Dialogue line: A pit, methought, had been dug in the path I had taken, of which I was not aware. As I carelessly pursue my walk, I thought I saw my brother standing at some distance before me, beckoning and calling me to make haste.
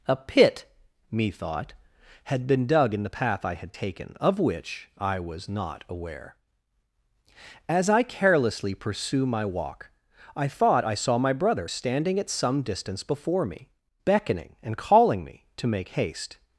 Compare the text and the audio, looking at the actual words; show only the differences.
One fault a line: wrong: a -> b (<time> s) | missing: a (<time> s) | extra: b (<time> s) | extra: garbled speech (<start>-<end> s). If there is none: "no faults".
no faults